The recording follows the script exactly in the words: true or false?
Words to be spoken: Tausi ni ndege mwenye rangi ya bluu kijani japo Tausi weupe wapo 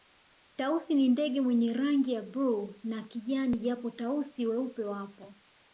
false